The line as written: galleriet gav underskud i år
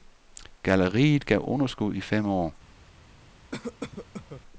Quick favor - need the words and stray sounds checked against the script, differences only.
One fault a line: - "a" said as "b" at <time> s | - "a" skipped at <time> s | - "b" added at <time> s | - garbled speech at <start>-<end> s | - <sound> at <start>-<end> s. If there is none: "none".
- "fem" added at 2.0 s
- cough at 3.5-4.4 s